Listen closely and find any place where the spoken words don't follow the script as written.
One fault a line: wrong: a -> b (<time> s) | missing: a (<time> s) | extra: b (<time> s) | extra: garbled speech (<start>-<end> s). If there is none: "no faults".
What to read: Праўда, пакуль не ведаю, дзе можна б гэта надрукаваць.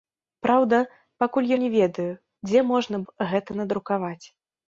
no faults